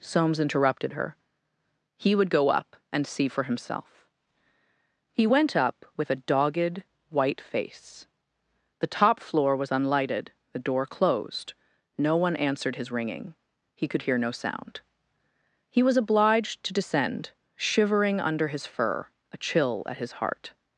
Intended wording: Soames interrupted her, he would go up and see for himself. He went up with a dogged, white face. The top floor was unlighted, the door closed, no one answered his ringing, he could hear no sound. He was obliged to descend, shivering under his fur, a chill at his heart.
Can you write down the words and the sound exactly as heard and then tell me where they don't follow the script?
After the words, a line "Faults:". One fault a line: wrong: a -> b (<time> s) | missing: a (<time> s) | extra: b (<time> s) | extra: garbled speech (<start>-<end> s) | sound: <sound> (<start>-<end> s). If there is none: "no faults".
Soames interrupted her, he would go up and see for himself. He went up with a dogged, white face. The top floor was unlighted, the door closed, no one answered his ringing, he could hear no sound. He was obliged to descend, shivering under his fur, a chill at his heart.
Faults:
no faults